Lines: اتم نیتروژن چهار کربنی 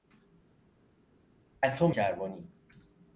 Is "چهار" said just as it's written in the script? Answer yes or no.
no